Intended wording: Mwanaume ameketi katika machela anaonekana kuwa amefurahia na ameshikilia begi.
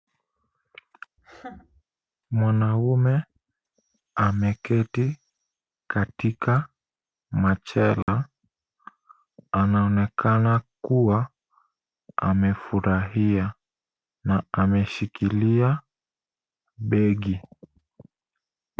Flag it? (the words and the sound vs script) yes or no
yes